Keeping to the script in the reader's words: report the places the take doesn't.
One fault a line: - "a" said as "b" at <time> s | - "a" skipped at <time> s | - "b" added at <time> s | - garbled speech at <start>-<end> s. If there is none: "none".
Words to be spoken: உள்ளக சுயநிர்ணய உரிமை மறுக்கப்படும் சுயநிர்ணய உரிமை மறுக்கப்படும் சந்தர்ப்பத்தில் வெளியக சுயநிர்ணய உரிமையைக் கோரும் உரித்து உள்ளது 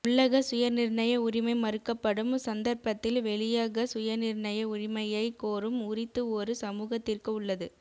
- "சுயநிர்ணய உரிமை மறுக்கப்படும்" skipped at 2.3 s
- "ஒரு சமூகத்திற்கு" added at 6.3 s